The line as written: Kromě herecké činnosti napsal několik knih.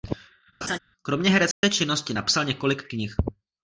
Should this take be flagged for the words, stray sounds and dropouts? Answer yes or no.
yes